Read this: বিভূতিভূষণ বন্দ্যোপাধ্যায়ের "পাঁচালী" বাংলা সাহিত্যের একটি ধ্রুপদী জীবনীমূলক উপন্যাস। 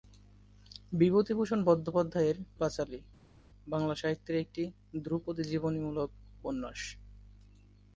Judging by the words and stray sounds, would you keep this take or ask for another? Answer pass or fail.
pass